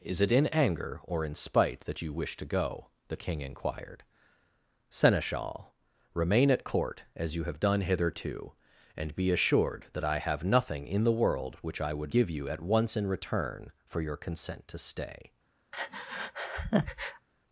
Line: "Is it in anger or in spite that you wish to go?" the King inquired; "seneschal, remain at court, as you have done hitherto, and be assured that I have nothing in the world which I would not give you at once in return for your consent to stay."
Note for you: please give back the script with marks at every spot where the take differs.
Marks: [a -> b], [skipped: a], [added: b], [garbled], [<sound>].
"Is it in anger or in spite that you wish to go?" the King inquired; "seneschal, remain at court, as you have done hitherto, and be assured that I have nothing in the world which I would [skipped: not] give you at once in return for your consent to stay." [breath]